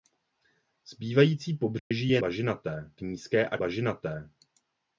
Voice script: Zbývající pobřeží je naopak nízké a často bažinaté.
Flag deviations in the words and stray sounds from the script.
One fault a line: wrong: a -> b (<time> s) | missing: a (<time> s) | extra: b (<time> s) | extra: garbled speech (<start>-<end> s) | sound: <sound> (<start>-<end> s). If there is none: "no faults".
sound: dropout (1.8-1.9 s)
wrong: naopak -> bažinaté (2.2 s)
missing: často (3.6 s)